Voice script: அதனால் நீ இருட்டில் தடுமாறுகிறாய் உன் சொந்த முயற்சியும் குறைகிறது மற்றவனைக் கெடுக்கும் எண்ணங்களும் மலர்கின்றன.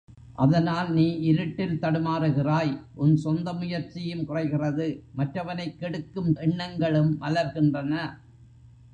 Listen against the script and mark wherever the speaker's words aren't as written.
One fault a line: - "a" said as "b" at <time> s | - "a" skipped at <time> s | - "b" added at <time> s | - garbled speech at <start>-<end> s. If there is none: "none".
none